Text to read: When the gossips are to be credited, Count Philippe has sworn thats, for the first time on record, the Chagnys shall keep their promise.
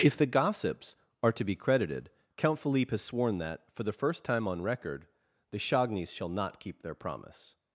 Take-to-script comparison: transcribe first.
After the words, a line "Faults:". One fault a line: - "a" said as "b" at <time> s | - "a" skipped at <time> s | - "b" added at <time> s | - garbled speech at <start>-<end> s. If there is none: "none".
If the gossips are to be credited, Count Philippe has sworn that, for the first time on record, the Chagnys shall not keep their promise.
Faults:
- "When" said as "If" at 0.0 s
- "thats" said as "that" at 3.4 s
- "not" added at 6.3 s